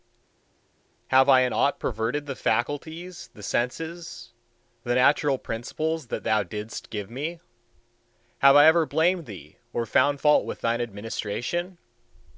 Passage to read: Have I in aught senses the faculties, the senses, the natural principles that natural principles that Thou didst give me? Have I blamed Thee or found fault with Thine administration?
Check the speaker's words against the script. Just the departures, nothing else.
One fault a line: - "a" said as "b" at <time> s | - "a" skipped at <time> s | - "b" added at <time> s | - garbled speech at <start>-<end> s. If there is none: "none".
- "senses" said as "perverted" at 1.8 s
- "natural principles that" skipped at 6.2 s
- "ever" added at 8.7 s